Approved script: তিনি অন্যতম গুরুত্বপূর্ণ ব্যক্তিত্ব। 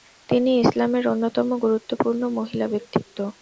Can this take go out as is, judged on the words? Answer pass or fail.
fail